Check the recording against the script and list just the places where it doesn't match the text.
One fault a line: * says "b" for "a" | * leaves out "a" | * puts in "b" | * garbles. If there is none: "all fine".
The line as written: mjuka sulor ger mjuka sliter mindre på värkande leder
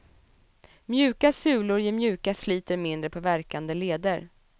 all fine